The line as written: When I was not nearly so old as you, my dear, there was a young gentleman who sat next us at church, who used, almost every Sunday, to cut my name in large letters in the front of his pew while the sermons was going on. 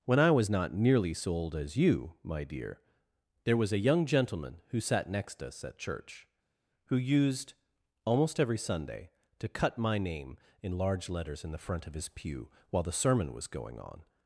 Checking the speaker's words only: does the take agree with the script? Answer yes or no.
no